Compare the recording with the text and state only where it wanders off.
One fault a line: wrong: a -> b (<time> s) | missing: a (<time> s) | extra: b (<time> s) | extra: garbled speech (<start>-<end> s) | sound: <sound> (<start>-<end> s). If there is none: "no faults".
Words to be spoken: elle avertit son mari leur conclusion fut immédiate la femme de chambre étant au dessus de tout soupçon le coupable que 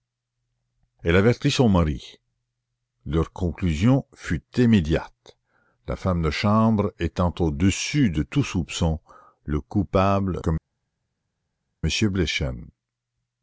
no faults